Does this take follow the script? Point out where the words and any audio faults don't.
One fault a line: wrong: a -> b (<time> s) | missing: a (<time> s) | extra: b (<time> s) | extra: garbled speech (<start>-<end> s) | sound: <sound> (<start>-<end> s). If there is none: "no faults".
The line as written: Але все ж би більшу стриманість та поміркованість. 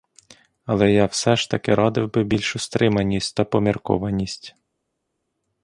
extra: я (0.9 s)
extra: таки радив (1.5 s)